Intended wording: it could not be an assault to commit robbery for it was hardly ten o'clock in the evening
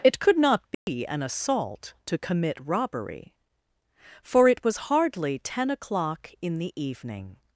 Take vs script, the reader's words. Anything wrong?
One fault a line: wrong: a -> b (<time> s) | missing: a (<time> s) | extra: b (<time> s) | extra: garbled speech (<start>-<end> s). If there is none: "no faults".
no faults